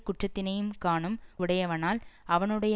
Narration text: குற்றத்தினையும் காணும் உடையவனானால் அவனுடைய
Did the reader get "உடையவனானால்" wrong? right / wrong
right